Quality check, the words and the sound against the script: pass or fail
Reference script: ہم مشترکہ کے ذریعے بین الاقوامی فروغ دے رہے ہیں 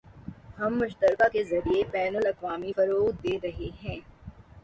pass